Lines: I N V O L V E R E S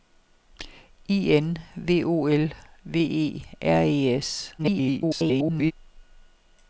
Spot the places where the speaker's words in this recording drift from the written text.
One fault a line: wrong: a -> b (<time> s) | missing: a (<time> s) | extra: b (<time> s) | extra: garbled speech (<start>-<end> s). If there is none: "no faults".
extra: garbled speech (4.6-5.7 s)